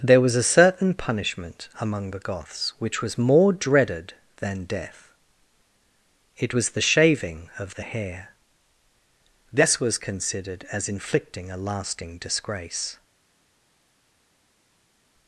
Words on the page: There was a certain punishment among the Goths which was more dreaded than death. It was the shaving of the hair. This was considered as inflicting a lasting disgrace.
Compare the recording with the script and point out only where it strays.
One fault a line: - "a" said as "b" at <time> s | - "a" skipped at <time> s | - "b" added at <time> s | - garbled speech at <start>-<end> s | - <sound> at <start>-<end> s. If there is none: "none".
none